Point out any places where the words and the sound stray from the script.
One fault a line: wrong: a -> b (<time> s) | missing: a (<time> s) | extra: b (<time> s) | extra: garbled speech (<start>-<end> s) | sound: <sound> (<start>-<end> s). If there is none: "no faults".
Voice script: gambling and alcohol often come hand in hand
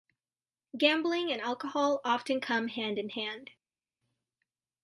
no faults